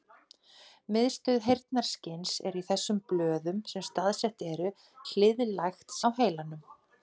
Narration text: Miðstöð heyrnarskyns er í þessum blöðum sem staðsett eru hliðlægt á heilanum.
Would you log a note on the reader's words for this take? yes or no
no